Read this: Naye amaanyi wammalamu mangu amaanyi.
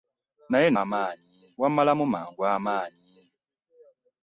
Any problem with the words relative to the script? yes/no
no